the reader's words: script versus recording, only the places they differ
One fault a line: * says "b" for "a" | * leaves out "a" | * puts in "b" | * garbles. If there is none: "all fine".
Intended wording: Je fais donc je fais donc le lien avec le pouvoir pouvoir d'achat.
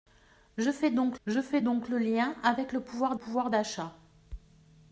all fine